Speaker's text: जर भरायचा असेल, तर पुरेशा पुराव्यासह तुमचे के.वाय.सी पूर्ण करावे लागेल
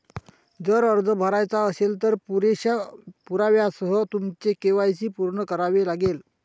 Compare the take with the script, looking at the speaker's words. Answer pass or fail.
fail